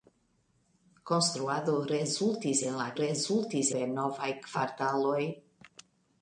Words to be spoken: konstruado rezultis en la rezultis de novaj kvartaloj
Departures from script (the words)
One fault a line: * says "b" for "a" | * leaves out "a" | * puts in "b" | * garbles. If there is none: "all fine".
all fine